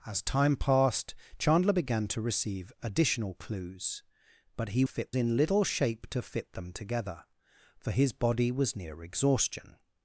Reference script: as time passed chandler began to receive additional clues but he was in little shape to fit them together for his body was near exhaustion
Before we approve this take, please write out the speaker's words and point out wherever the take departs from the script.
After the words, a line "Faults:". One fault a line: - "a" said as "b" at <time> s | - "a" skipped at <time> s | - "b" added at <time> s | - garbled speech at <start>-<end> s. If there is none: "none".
as time passed chandler began to receive additional clues but he fit in little shape to fit them together for his body was near exhaustion
Faults:
- "was" said as "fit" at 4.8 s